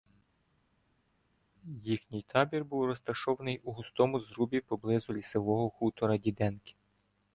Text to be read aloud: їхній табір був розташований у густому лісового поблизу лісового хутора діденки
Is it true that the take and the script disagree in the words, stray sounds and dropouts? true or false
true